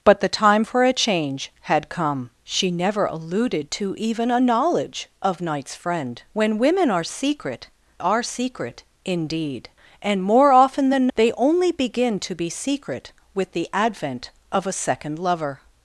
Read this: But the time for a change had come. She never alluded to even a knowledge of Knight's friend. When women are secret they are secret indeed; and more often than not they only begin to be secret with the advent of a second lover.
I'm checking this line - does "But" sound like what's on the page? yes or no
yes